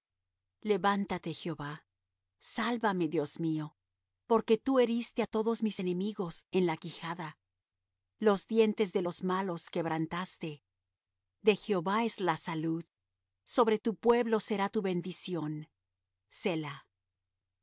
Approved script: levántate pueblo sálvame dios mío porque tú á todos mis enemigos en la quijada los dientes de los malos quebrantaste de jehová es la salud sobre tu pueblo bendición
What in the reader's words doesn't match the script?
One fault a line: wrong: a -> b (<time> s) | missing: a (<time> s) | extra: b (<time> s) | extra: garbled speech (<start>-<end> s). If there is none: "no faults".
wrong: pueblo -> jehová (1.3 s)
extra: heriste (4.8 s)
extra: será tu (14.4 s)